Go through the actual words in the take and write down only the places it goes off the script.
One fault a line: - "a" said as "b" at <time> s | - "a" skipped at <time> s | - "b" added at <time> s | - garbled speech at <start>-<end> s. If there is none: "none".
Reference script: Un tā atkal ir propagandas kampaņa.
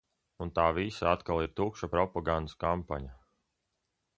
- "visa" added at 0.8 s
- "tukša" added at 1.6 s